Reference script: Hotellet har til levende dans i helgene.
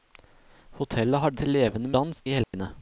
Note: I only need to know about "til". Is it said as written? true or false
true